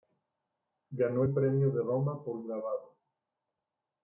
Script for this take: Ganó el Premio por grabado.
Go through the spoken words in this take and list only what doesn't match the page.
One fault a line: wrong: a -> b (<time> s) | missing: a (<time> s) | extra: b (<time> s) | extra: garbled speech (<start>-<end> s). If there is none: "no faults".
extra: de Roma (1.7 s)